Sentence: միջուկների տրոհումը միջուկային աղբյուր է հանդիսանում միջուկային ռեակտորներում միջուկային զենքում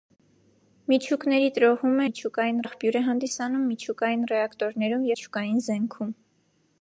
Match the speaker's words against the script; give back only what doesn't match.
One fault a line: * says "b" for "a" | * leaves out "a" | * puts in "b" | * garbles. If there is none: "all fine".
all fine